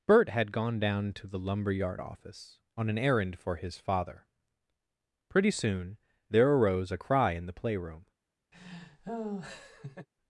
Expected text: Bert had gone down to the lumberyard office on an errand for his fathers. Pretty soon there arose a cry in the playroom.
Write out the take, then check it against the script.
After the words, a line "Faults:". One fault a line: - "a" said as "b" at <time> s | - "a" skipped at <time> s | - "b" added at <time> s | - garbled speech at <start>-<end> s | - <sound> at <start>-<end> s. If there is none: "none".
Bert had gone down to the lumberyard office on an errand for his father. Pretty soon there arose a cry in the playroom.
Faults:
- "fathers" said as "father" at 3.8 s
- laugh at 8.5-10.1 s